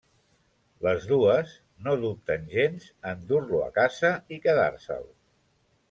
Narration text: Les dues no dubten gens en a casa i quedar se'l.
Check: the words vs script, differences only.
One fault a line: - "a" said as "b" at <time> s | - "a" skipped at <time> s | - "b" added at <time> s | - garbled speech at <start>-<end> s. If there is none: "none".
- "dur lo" added at 3.3 s